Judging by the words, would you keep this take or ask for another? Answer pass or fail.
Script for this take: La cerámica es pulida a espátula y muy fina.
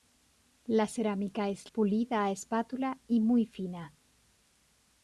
pass